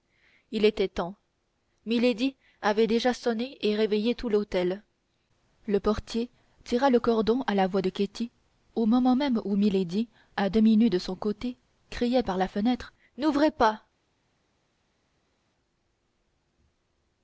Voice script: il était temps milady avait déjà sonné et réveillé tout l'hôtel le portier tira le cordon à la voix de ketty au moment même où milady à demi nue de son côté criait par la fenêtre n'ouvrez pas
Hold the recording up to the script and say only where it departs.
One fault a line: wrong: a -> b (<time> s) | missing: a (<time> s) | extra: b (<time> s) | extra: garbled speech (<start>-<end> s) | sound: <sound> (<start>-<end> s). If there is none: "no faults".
no faults